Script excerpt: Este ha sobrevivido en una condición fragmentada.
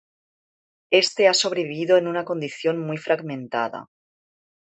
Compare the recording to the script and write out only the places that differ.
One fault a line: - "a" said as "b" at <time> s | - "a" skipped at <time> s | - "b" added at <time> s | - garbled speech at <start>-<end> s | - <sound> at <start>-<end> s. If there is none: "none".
- "muy" added at 2.8 s